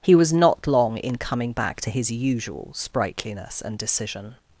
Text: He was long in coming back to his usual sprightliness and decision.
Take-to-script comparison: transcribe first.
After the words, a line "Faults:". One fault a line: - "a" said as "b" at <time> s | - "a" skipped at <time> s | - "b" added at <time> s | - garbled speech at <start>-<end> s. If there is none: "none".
He was not long in coming back to his usual sprightliness and decision.
Faults:
- "not" added at 0.3 s